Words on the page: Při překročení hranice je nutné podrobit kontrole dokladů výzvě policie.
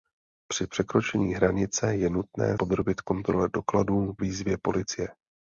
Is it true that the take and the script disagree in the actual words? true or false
false